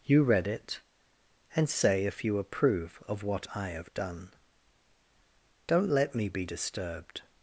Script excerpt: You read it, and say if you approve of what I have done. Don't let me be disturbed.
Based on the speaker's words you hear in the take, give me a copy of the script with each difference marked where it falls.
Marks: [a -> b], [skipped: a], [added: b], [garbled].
You read it, and say if you approve of what I have done. Don't let me be disturbed.